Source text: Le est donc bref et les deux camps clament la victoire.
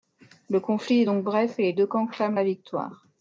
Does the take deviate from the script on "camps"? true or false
false